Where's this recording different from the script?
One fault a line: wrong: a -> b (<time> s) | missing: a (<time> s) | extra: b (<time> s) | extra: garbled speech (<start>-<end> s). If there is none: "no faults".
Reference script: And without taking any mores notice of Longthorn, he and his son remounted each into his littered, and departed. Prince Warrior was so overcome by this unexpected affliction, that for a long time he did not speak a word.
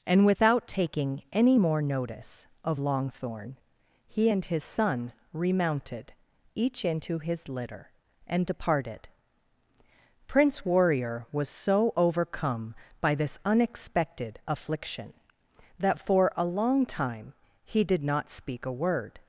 wrong: mores -> more (1.6 s)
wrong: littered -> litter (7.5 s)